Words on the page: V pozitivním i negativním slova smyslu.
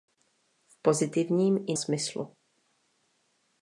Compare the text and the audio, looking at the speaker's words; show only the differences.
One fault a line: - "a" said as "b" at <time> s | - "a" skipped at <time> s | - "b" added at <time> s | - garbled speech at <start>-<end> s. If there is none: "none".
- "negativním slova" skipped at 1.8 s